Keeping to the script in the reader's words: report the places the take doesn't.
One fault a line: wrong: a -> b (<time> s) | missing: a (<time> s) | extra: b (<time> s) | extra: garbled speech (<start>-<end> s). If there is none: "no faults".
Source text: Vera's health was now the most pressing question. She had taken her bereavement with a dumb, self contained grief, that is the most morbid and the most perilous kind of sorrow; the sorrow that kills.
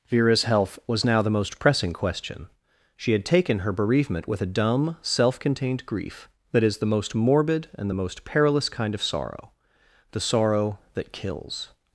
no faults